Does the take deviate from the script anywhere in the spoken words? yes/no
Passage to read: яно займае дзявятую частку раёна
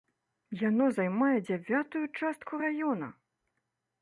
no